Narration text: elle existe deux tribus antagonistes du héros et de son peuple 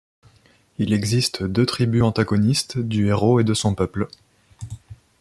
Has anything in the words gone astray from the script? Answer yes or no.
yes